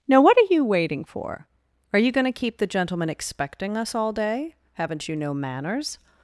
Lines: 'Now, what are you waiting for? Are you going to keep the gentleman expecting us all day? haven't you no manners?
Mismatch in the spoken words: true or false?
false